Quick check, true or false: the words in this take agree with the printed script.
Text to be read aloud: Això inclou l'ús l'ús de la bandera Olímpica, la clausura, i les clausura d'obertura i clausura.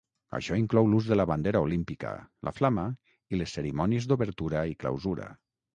false